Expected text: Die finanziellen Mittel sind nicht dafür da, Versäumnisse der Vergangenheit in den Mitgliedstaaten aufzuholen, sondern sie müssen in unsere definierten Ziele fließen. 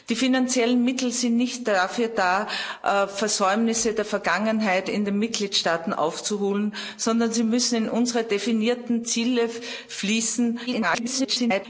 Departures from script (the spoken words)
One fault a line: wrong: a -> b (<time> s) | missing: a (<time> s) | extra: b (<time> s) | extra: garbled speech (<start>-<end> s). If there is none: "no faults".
extra: garbled speech (10.7-11.7 s)